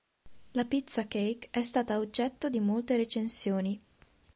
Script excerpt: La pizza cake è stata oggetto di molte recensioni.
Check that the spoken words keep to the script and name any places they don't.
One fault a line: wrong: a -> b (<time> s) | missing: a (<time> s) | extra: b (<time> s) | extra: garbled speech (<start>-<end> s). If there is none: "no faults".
no faults